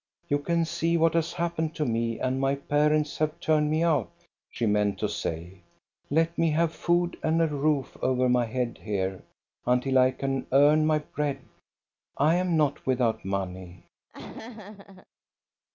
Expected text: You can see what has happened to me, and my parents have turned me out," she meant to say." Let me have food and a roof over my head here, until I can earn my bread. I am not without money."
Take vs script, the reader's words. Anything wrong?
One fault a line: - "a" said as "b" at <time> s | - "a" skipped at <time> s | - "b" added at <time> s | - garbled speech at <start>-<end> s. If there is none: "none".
none